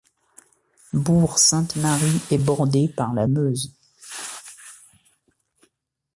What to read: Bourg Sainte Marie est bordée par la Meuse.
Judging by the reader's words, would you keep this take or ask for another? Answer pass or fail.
pass